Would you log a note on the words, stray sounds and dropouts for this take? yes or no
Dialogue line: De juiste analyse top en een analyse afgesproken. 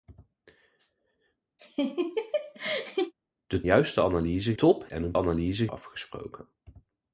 yes